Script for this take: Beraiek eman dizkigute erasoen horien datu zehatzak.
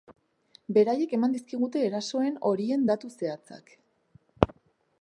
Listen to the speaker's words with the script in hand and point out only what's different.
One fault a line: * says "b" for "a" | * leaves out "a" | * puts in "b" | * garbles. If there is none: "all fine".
all fine